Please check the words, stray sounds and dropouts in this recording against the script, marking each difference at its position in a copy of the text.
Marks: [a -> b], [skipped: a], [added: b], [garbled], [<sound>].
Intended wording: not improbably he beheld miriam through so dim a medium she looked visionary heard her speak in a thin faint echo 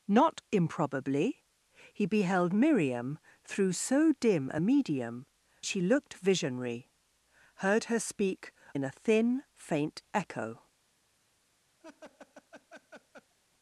not improbably he beheld miriam through so dim a medium she looked visionary heard her speak in a thin faint echo [laugh]